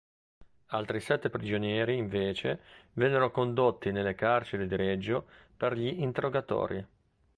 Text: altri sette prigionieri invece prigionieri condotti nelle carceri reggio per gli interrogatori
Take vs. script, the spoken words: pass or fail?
fail